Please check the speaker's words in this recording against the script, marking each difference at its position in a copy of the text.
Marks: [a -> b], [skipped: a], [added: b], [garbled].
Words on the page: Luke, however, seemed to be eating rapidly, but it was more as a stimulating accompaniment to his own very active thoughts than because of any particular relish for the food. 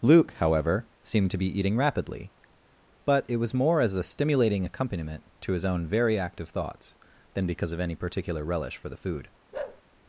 Luke, however, seemed to be eating rapidly, but it was more as a stimulating accompaniment to his own very active thoughts than because of any particular relish for the food.